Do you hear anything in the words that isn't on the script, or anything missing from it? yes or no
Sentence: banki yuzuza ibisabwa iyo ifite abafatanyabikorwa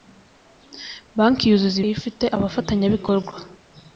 yes